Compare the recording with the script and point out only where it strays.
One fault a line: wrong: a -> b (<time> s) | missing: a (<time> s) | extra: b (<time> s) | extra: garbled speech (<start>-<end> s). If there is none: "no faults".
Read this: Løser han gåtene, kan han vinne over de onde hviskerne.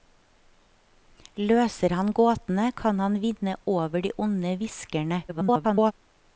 extra: garbled speech (5.3-5.9 s)